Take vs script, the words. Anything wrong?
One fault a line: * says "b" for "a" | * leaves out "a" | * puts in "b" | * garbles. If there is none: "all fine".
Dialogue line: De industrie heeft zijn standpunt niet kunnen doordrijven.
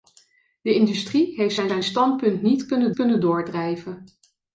* puts in "zijn"
* puts in "kunnen"